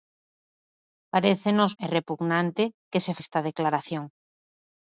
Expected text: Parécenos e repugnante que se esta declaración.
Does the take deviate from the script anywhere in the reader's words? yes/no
no